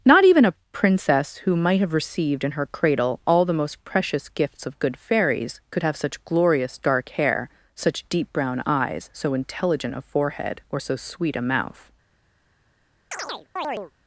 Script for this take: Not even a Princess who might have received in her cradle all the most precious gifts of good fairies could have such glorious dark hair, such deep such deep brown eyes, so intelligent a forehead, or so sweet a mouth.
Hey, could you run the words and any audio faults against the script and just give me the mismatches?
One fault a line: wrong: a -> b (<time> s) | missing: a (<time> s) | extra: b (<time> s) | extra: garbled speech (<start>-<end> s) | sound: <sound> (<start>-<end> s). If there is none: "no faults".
missing: such deep (8.3 s)
sound: chirp (13.1-13.9 s)